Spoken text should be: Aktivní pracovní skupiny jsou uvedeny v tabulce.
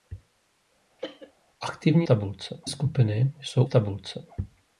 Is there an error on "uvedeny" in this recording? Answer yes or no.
yes